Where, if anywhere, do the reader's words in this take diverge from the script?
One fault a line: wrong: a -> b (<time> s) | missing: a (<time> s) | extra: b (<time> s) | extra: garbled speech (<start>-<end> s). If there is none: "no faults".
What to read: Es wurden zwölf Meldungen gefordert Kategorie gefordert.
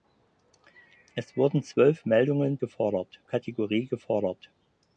no faults